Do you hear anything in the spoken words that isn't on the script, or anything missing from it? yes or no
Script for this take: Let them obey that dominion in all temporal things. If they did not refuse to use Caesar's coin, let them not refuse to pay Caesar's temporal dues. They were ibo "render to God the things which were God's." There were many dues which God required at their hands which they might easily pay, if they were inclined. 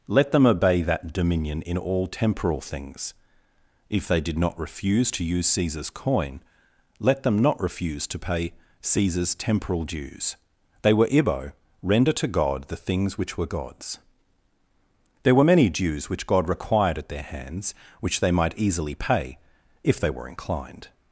no